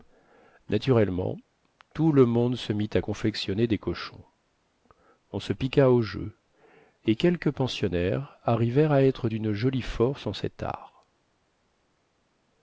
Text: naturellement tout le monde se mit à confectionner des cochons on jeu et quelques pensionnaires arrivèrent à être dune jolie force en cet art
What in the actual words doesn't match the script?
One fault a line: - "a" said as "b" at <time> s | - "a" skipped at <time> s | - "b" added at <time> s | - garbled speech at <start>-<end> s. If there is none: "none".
- "se piqua au" added at 5.4 s